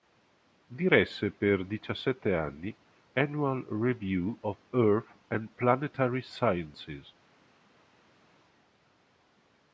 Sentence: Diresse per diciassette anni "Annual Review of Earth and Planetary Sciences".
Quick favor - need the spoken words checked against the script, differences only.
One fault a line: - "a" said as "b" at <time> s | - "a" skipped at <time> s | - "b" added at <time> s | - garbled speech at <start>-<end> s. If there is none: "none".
none